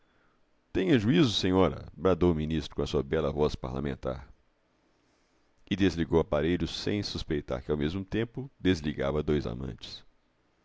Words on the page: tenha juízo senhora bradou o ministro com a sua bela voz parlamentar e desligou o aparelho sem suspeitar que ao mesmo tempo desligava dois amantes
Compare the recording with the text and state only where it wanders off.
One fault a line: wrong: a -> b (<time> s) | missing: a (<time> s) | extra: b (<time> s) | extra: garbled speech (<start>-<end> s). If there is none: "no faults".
no faults